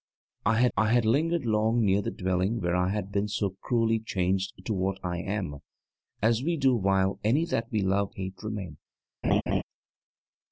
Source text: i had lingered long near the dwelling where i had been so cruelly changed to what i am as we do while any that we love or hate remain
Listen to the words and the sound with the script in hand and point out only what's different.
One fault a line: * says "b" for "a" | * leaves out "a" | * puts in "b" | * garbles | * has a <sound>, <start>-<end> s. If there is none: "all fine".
* puts in "i had"
* leaves out "or"
* has a laugh, 9.2-9.6 s